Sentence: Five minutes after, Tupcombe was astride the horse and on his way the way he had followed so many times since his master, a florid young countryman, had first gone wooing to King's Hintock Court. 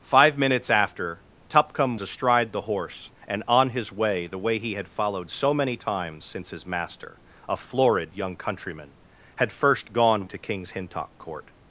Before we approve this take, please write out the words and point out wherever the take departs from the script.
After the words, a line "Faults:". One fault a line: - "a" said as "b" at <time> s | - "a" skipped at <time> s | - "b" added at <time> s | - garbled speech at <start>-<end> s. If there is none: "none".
Five minutes after, Tupcombe astride the horse and on his way the way he had followed so many times since his master, a florid young countryman, had first gone to King's Hintock Court.
Faults:
- "was" skipped at 2.0 s
- "wooing" skipped at 10.3 s